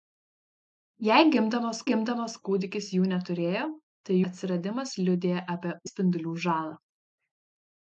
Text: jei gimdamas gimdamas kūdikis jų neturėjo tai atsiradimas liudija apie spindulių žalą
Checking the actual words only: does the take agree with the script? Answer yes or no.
yes